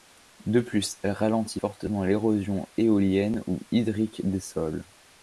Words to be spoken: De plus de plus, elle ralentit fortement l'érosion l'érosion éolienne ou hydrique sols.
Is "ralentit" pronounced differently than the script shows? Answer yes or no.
no